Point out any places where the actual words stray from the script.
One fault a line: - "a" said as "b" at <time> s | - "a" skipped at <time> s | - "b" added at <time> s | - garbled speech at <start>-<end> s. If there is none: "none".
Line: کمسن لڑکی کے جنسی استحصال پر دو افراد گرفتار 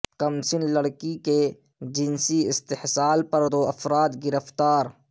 none